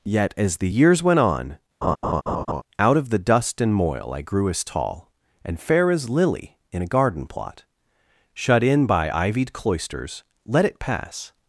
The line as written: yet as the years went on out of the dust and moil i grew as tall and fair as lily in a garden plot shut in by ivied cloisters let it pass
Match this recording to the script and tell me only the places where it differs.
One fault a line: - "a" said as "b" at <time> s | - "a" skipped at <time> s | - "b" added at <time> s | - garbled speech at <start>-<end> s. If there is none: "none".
none